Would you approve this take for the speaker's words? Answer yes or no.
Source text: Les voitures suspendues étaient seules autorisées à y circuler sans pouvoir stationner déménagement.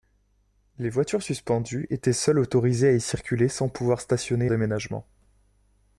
yes